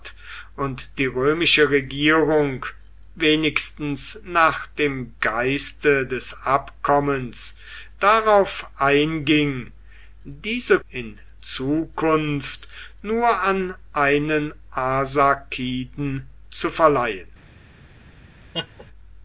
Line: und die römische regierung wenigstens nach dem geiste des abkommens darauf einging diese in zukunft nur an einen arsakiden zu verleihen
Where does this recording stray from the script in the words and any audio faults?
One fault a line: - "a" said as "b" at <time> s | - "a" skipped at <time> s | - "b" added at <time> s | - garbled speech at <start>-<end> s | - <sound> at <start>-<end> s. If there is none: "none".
- laugh at 18.5-18.9 s